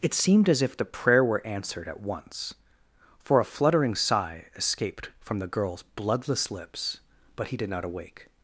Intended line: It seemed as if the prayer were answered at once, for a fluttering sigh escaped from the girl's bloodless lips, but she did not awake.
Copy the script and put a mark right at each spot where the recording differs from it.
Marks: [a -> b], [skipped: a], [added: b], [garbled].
It seemed as if the prayer were answered at once, for a fluttering sigh escaped from the girl's bloodless lips, but [she -> he] did not awake.